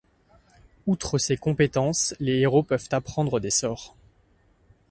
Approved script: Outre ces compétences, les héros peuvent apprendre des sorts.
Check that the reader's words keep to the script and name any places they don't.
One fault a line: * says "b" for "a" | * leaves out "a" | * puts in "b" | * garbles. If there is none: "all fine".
all fine